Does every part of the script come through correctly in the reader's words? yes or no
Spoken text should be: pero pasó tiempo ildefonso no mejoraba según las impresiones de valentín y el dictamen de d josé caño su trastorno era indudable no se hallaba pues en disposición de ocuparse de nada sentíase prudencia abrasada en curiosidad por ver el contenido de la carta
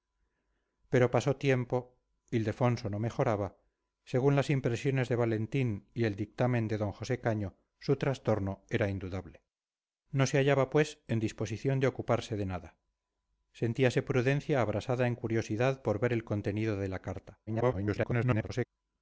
no